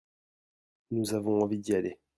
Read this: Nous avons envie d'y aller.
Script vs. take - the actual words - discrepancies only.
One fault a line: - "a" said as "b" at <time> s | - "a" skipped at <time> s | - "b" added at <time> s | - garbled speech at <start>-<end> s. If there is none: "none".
none